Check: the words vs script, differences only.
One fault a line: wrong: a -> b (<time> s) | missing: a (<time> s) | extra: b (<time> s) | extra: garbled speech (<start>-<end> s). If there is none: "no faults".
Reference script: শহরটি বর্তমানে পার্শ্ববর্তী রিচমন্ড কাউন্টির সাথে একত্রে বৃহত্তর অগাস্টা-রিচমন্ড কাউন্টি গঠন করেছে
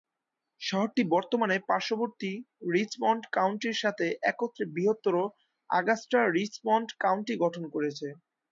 no faults